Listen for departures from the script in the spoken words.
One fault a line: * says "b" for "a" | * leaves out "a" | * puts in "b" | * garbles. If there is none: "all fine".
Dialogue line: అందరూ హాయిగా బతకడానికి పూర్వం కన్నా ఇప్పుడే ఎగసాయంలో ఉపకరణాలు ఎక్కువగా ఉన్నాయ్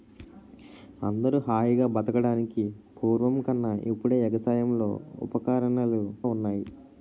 * leaves out "ఎక్కువగా"